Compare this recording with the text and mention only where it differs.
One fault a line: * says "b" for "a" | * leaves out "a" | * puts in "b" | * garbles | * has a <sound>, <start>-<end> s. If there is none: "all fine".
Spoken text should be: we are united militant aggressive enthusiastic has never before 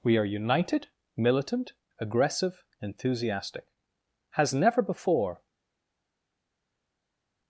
all fine